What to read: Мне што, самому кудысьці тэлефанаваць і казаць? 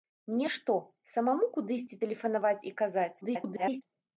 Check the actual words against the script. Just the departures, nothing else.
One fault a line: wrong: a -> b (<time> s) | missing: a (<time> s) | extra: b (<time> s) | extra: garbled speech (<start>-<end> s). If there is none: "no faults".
extra: garbled speech (3.2-3.8 s)